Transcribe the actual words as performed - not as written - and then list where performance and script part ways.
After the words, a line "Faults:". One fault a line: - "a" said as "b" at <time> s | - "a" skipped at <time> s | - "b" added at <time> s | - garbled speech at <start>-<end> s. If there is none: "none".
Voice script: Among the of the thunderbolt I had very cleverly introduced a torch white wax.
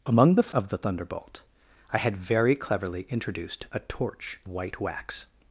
Among the of the thunderbolt I had very cleverly introduced a torch white wax.
Faults:
none